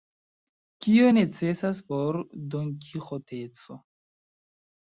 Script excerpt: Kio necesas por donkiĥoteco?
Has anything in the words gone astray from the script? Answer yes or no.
no